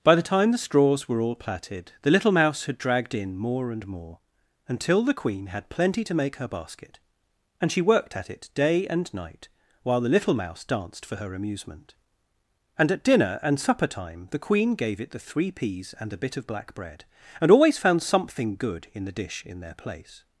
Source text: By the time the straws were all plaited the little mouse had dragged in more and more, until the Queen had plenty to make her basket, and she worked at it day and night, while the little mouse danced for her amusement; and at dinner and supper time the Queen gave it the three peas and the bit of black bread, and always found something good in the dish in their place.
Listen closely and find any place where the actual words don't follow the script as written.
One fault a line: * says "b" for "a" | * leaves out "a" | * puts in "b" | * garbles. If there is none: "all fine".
* says "a" for "the"